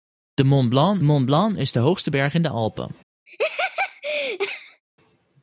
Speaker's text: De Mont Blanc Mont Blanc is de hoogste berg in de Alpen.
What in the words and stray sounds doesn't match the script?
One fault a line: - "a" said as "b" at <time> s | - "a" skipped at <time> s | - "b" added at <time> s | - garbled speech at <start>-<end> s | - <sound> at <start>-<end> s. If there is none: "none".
- laugh at 3.3-4.8 s